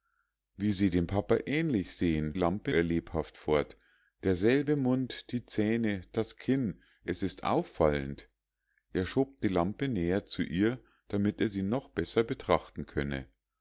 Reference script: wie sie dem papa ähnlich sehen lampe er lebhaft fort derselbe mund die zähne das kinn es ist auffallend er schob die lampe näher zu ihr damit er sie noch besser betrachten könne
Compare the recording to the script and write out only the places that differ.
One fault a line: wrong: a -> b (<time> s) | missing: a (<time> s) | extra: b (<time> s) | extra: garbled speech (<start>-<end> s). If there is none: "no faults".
no faults